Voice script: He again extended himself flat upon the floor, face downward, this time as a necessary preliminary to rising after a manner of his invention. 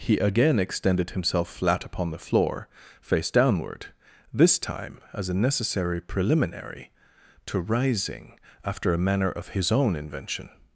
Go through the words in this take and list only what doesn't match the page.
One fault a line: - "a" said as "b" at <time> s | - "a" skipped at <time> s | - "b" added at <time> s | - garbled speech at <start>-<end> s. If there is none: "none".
- "own" added at 9.7 s